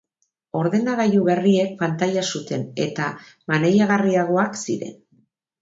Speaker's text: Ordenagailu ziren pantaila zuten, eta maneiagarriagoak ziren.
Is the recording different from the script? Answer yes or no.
yes